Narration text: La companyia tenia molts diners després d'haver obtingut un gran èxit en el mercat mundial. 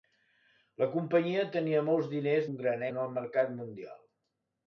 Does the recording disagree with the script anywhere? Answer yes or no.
yes